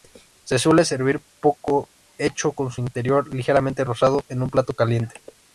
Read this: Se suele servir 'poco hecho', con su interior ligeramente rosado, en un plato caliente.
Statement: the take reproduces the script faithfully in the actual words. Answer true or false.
true